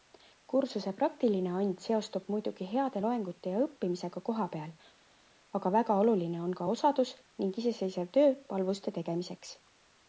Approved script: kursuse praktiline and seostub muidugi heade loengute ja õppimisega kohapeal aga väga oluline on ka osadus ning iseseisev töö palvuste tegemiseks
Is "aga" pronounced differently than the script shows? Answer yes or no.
no